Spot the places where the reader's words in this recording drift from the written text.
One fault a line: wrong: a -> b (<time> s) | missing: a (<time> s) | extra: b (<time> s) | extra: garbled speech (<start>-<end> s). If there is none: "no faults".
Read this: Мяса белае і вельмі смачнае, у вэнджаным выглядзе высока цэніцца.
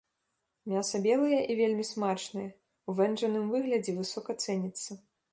no faults